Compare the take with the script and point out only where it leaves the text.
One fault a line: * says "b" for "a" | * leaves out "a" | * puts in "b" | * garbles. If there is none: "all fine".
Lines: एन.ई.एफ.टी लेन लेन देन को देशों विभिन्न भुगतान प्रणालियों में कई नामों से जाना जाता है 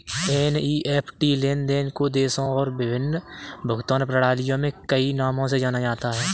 * leaves out "लेन"
* puts in "और"